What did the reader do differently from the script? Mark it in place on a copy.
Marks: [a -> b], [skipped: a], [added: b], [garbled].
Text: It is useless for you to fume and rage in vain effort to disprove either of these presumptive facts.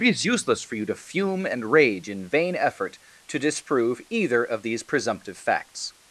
It is useless for you to fume and rage in vain effort to disprove either of these presumptive facts.